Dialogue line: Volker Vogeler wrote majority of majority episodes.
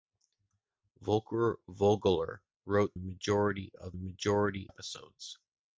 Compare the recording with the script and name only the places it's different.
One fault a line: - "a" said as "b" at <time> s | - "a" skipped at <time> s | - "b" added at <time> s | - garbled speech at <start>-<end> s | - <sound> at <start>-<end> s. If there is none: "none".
none